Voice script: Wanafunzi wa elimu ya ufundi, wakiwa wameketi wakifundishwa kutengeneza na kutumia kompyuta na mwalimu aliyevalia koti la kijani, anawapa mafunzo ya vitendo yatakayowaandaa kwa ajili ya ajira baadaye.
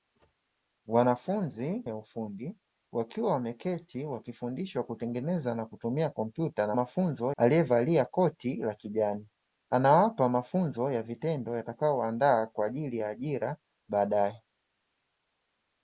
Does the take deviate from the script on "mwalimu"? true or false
true